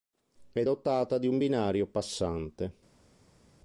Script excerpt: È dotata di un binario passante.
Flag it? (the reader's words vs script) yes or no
no